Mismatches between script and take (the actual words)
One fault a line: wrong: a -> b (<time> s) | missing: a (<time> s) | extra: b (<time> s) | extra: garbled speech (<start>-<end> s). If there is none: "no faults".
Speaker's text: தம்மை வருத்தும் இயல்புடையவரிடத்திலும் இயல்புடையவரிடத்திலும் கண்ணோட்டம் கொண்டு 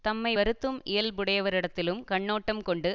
missing: இயல்புடையவரிடத்திலும் (2.0 s)